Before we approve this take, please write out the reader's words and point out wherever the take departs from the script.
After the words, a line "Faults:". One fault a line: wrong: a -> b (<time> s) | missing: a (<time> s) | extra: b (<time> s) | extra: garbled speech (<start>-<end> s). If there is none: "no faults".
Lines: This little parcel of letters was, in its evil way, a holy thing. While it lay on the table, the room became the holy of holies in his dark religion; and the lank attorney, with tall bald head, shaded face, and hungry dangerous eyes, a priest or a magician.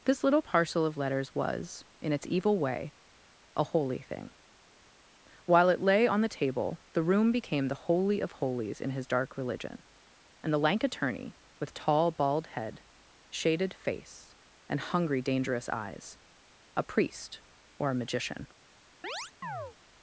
This little parcel of letters was, in its evil way, a holy thing. While it lay on the table, the room became the holy of holies in his dark religion; and the lank attorney, with tall bald head, shaded face, and hungry dangerous eyes, a priest or a magician.
Faults:
no faults